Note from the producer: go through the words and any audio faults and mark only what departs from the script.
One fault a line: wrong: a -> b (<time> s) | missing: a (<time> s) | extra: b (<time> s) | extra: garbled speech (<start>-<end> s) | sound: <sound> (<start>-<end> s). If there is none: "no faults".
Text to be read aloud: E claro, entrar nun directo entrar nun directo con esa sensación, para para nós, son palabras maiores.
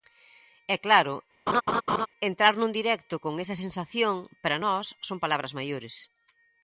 sound: laugh (1.5-2.1 s)
missing: entrar nun directo (3.2 s)
missing: para (4.6 s)